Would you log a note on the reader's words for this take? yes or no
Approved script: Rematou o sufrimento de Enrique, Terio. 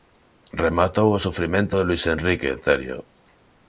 yes